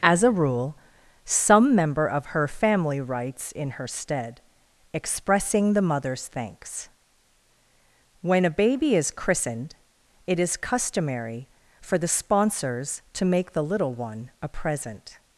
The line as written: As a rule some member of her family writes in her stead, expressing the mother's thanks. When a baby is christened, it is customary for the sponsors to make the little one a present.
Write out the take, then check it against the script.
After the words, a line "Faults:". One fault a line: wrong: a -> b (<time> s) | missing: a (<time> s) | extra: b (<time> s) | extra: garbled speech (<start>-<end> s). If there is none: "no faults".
As a rule some member of her family writes in her stead, expressing the mother's thanks. When a baby is christened, it is customary for the sponsors to make the little one a present.
Faults:
no faults